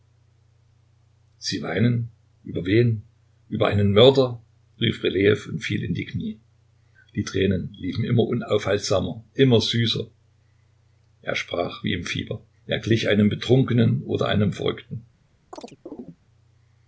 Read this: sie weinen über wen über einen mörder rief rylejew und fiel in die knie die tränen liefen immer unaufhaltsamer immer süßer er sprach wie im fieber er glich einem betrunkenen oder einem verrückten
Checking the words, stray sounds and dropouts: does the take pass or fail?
fail